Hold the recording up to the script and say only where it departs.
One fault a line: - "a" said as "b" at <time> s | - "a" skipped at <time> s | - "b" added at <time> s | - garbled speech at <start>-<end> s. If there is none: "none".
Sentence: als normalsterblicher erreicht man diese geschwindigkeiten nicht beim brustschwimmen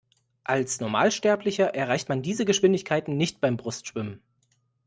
none